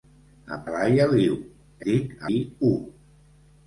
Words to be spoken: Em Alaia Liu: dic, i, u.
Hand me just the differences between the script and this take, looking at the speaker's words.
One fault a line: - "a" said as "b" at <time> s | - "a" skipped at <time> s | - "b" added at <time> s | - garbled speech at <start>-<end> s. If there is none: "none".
none